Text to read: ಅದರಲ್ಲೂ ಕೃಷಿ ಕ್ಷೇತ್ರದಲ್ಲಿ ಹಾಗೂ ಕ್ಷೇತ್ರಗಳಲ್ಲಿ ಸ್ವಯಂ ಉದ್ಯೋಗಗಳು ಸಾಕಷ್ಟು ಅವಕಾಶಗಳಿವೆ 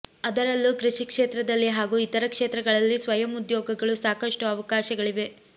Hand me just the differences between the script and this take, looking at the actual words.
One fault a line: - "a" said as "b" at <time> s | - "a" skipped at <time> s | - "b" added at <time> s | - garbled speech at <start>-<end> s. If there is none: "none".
- "ಇತರ" added at 2.0 s